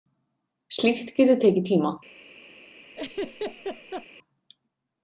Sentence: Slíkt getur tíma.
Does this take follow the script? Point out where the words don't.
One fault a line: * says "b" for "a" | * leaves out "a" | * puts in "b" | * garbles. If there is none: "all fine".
* puts in "tekið"